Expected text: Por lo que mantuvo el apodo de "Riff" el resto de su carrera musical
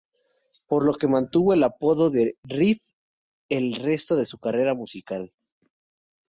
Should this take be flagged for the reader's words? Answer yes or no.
no